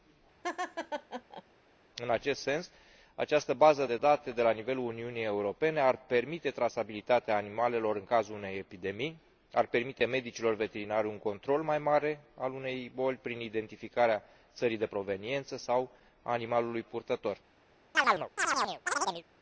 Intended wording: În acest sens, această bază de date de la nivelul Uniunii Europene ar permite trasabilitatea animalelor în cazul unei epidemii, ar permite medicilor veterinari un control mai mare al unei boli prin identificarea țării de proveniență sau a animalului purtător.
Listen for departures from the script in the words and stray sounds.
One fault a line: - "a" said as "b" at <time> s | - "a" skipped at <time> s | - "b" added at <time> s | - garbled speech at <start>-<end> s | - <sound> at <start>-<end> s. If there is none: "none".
- laugh at 0.4-1.4 s
- chirp at 17.9-19.2 s